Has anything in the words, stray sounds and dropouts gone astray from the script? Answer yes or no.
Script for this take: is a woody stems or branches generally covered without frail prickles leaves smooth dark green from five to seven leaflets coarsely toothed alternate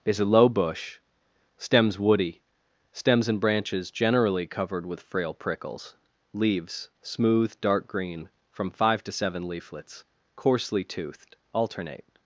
yes